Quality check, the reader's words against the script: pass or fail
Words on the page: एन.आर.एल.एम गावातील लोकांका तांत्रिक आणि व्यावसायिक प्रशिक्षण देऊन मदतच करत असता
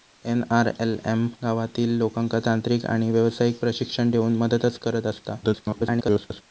fail